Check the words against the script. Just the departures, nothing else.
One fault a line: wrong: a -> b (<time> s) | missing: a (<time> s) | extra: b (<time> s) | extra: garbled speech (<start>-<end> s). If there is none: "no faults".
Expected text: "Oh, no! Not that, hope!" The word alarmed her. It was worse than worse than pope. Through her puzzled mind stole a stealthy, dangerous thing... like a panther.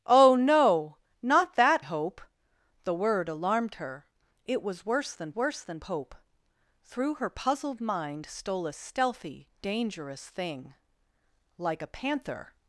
no faults